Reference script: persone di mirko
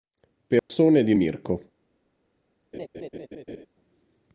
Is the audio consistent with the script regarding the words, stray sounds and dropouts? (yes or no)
no